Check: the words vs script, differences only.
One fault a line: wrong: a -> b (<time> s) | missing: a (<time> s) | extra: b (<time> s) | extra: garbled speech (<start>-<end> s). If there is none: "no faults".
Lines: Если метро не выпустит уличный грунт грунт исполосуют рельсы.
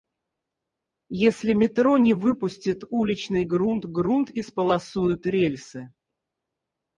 no faults